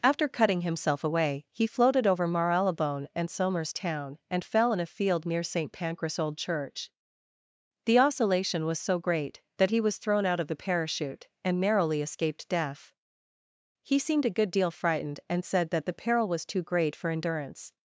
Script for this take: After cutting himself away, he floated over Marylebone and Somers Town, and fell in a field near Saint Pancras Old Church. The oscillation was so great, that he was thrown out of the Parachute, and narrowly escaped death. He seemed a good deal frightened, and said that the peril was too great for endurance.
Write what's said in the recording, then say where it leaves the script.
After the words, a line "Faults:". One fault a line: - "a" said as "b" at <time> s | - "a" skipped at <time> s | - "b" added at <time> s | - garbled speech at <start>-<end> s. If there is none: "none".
After cutting himself away, he floated over Marylebone and Somers Town, and fell in a field near Saint Pancras Old Church. The oscillation was so great, that he was thrown out of the Parachute, and narrowly escaped death. He seemed a good deal frightened, and said that the peril was too great for endurance.
Faults:
none